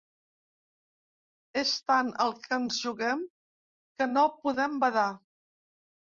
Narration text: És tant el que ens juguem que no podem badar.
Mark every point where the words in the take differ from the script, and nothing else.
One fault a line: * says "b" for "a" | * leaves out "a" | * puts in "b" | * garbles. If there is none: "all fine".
all fine